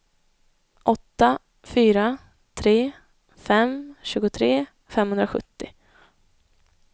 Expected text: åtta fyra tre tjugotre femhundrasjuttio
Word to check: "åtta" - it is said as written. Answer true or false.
true